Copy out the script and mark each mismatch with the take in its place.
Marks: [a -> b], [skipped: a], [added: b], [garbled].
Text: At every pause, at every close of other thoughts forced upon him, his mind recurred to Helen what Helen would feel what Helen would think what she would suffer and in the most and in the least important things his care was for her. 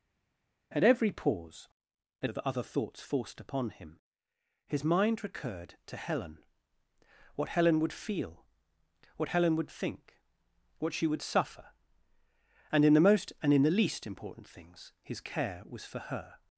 At every pause, at [skipped: every close] of other thoughts forced upon him, his mind recurred to Helen what Helen would feel what Helen would think what she would suffer and in the most and in the least important things his care was for her.